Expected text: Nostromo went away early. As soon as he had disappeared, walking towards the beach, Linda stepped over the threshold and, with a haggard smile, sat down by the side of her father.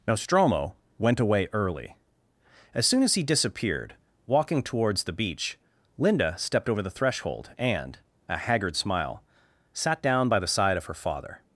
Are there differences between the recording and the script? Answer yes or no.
yes